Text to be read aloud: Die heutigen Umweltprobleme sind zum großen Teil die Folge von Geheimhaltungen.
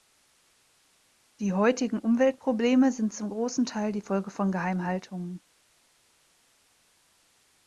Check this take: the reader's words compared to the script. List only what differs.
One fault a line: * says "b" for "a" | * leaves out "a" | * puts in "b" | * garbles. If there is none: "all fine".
all fine